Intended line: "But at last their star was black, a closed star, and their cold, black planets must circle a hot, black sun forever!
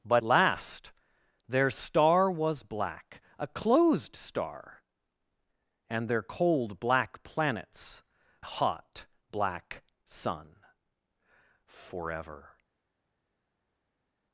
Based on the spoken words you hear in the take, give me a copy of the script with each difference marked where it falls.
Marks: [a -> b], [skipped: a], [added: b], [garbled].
"But [skipped: at] last their star was black, a closed star, and their cold, black planets [skipped: must circle a] hot, black sun forever!